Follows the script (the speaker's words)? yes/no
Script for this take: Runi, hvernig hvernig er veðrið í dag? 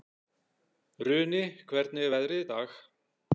no